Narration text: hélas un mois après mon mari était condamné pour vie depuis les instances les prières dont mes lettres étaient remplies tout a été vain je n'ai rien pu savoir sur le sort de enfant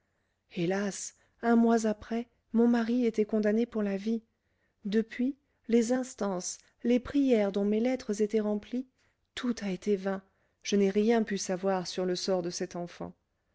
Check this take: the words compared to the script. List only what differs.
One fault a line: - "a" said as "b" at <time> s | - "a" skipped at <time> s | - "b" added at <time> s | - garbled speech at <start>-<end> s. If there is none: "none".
- "la" added at 3.8 s
- "cet" added at 12.5 s